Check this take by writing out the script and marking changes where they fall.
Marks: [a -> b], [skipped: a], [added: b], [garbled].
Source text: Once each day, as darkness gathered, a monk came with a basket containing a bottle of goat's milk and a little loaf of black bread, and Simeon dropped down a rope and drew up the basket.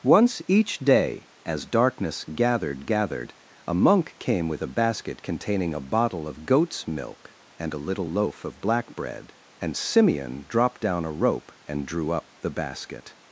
Once each day, as darkness gathered, [added: gathered] a monk came with a basket containing a bottle of goat's milk and a little loaf of black bread, and Simeon dropped down a rope and drew up the basket.